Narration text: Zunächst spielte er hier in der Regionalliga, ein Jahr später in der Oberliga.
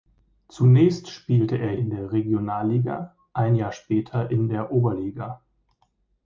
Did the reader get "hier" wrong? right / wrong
wrong